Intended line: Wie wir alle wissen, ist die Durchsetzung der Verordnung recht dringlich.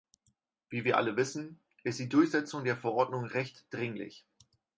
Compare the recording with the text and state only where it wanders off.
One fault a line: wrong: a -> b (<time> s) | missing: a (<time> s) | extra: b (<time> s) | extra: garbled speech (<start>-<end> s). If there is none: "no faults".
no faults